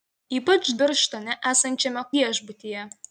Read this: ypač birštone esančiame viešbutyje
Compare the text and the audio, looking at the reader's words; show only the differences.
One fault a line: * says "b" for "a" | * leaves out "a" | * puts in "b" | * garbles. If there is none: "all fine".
all fine